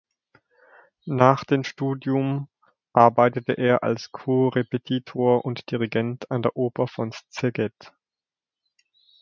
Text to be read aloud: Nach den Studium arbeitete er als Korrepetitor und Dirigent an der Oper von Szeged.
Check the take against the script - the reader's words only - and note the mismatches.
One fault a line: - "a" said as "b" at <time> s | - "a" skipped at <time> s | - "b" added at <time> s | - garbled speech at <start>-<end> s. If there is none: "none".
none